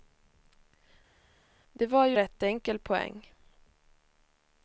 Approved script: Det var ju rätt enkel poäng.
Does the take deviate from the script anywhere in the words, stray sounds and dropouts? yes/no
no